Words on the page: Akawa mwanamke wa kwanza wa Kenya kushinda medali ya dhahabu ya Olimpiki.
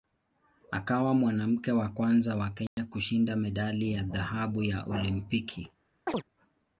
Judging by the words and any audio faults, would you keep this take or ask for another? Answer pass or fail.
fail